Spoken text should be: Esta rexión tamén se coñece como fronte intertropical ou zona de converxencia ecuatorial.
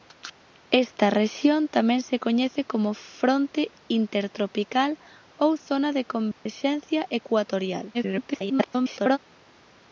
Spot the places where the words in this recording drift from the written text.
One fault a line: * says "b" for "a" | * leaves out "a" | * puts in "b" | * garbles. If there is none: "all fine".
* garbles